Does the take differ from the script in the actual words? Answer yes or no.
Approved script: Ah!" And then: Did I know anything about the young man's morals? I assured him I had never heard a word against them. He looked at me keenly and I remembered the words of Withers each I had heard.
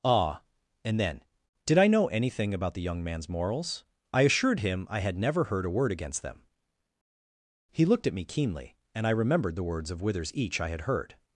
no